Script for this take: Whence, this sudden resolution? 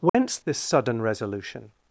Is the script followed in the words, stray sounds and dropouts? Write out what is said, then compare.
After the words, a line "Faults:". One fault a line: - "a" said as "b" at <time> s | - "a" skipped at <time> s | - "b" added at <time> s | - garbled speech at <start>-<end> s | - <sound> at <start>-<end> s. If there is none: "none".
Whence, this sudden resolution?
Faults:
- dropout at 0.1-0.1 s